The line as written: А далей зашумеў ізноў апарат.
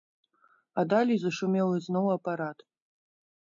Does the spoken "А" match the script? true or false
true